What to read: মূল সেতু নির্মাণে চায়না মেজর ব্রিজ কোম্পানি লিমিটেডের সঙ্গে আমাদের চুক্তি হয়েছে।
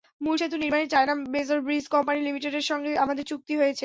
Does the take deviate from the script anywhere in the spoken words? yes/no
no